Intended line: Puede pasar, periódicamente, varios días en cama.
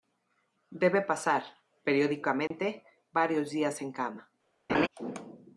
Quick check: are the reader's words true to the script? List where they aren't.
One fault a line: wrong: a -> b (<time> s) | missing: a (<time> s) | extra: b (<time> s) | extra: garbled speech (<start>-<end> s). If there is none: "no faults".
wrong: Puede -> Debe (0.7 s)